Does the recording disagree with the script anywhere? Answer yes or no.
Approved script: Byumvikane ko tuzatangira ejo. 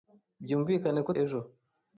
yes